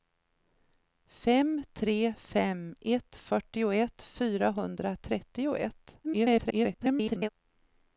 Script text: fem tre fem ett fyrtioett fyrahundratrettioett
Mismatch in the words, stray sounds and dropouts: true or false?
true